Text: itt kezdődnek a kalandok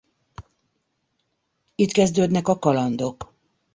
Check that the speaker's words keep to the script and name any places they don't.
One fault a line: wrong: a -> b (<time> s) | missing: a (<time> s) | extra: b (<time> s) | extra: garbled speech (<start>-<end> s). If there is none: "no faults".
no faults